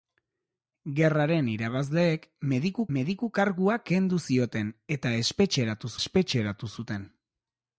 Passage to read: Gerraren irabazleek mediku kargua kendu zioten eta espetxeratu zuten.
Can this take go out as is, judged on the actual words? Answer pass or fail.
fail